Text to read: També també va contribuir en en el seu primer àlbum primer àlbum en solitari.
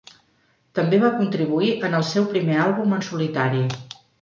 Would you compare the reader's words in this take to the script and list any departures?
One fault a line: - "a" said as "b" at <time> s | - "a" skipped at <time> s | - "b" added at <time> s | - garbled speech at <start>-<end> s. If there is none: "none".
- "també" skipped at 1.0 s
- "en" skipped at 2.0 s
- "primer àlbum" skipped at 3.0 s